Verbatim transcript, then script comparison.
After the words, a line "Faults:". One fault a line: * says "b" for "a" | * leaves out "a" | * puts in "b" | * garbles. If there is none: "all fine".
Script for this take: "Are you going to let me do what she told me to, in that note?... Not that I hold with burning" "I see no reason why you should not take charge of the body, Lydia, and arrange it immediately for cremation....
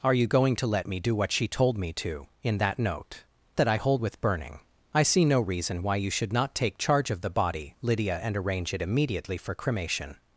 "Are you going to let me do what she told me to, in that note?... That I hold with burning" "I see no reason why you should not take charge of the body, Lydia, and arrange it immediately for cremation....
Faults:
* leaves out "Not"